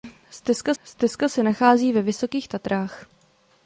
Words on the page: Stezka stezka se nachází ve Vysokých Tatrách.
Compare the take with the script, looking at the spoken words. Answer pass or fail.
pass